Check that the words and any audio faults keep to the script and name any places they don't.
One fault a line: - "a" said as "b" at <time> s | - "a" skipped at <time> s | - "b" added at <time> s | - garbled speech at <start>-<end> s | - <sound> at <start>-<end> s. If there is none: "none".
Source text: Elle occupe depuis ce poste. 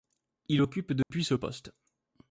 - "Elle" said as "Il" at 0.5 s
- dropout at 1.0-1.1 s